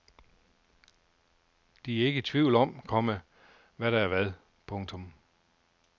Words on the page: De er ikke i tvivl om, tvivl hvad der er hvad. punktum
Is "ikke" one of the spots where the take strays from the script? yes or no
no